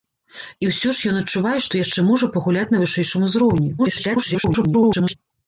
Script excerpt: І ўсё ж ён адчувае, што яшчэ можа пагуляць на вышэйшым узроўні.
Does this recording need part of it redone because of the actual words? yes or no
yes